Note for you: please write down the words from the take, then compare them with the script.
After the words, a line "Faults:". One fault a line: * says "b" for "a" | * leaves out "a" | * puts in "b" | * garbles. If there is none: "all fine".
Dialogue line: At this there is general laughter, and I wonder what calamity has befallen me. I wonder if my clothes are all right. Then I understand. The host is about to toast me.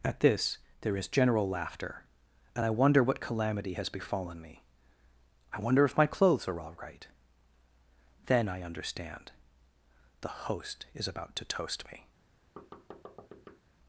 At this there is general laughter, and I wonder what calamity has befallen me. I wonder if my clothes are all right. Then I understand. The host is about to toast me.
Faults:
all fine